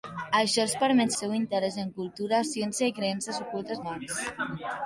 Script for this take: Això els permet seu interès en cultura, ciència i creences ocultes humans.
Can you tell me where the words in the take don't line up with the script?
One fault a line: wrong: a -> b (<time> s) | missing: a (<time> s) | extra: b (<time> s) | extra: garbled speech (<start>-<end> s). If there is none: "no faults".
no faults